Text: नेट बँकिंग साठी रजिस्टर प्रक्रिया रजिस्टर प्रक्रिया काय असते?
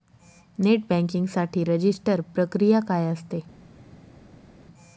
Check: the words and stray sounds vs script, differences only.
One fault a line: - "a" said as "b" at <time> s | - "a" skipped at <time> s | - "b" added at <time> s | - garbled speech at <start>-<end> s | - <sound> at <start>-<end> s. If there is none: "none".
- "रजिस्टर प्रक्रिया" skipped at 2.8 s